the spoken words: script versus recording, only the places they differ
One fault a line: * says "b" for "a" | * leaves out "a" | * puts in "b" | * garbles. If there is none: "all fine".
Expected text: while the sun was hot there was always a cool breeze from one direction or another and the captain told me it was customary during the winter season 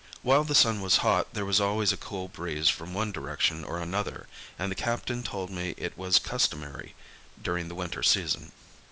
all fine